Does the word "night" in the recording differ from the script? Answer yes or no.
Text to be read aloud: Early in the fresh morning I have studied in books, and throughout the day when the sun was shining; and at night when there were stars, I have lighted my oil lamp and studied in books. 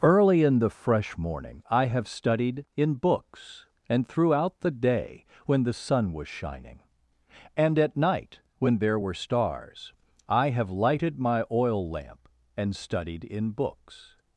no